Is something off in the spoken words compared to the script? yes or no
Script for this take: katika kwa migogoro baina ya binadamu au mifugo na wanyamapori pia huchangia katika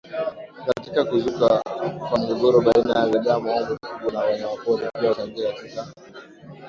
yes